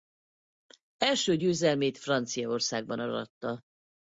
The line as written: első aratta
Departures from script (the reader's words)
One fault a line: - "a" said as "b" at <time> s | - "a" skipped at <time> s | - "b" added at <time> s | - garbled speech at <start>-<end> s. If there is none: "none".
- "győzelmét franciaországban" added at 1.3 s